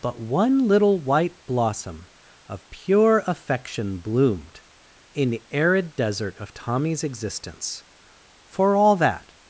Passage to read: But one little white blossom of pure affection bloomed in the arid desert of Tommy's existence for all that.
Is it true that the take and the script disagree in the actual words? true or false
false